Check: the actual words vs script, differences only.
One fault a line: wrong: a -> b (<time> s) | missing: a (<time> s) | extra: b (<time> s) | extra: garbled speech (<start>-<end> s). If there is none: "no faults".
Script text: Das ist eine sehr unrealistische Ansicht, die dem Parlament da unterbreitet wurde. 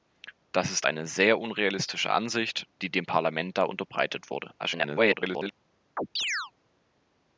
extra: garbled speech (4.6-5.5 s)